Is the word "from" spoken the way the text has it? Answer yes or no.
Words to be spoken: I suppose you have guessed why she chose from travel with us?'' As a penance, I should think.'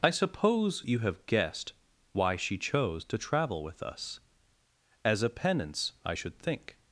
no